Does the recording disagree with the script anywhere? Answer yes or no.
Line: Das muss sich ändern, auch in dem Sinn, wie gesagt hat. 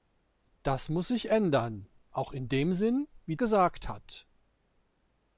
no